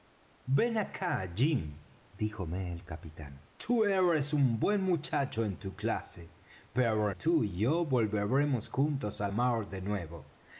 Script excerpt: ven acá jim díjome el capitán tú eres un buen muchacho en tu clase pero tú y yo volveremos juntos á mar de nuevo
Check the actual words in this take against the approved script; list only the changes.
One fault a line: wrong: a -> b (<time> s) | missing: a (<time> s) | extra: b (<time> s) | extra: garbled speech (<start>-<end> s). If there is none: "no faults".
no faults